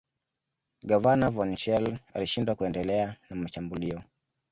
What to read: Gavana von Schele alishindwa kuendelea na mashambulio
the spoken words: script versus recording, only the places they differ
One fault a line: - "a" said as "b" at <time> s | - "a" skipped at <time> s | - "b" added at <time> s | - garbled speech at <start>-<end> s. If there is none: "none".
none